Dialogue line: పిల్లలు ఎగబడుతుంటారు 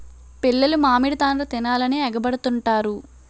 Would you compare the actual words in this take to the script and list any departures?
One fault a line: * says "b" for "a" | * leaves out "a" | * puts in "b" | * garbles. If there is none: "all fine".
* puts in "మామిడి తాండ్ర తినాలని"